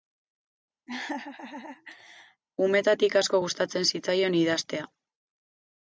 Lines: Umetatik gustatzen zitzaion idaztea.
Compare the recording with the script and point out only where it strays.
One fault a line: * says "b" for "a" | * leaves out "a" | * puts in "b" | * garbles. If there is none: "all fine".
* puts in "asko"